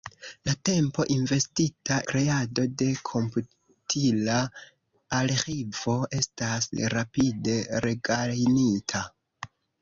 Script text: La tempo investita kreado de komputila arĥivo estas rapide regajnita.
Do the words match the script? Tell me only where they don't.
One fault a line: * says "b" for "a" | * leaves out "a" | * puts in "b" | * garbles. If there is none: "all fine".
all fine